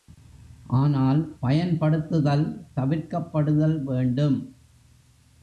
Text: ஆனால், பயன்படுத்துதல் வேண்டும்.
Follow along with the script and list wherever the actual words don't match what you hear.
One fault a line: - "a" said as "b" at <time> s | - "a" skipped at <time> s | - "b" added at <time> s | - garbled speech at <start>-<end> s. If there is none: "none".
- "தவிர்க்கப்படுதல்" added at 2.7 s